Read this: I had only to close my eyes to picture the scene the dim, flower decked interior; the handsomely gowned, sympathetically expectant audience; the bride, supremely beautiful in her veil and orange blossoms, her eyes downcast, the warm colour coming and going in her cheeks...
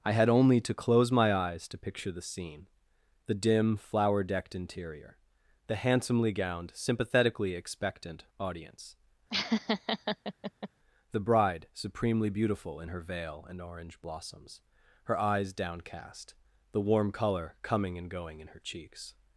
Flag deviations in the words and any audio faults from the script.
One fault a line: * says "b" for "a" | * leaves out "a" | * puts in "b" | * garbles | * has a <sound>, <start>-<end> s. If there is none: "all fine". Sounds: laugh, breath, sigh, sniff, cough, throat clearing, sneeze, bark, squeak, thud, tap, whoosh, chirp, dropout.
* has a laugh, 9.3-10.7 s